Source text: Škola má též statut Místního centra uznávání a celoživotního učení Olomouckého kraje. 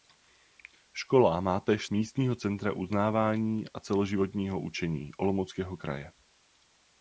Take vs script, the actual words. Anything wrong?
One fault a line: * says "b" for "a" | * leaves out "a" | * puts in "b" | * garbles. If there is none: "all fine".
* leaves out "statut"